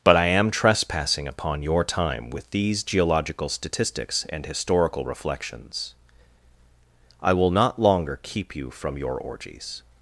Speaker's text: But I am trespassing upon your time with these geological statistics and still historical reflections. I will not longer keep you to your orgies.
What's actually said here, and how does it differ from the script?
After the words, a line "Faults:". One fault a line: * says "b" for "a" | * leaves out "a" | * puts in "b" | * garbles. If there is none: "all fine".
But I am trespassing upon your time with these geological statistics and historical reflections. I will not longer keep you from your orgies.
Faults:
* leaves out "still"
* says "from" for "to"